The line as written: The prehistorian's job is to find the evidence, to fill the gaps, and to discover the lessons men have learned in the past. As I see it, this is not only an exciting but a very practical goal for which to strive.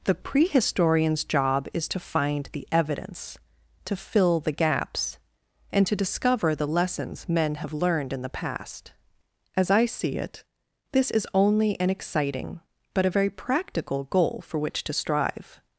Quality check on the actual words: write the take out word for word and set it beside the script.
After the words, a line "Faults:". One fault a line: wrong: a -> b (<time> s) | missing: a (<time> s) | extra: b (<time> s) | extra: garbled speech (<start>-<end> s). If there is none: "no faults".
The prehistorian's job is to find the evidence, to fill the gaps, and to discover the lessons men have learned in the past. As I see it, this is only an exciting but a very practical goal for which to strive.
Faults:
missing: not (11.3 s)